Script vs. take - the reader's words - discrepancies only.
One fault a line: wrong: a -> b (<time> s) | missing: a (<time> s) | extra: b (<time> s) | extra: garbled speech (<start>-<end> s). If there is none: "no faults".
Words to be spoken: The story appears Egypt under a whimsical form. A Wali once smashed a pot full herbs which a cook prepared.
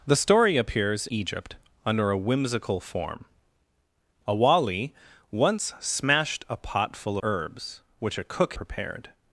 no faults